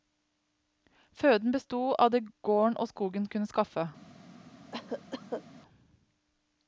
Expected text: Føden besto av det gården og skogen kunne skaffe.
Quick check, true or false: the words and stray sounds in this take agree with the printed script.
false